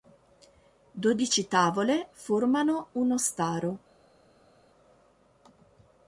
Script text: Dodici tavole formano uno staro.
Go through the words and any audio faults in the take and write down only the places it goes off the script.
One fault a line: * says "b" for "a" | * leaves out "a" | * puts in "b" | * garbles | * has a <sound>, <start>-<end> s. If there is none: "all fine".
all fine